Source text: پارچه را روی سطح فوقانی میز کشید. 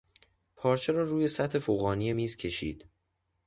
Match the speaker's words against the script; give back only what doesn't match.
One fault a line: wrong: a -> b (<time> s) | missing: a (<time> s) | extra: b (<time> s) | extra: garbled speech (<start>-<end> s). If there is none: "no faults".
no faults